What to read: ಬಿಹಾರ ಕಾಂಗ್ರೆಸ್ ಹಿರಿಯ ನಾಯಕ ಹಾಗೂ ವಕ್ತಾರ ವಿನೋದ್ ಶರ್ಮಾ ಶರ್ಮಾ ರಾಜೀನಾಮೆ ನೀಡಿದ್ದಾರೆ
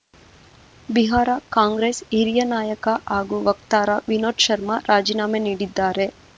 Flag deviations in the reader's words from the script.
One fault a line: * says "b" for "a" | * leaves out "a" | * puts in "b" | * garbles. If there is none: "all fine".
* leaves out "ಶರ್ಮಾ"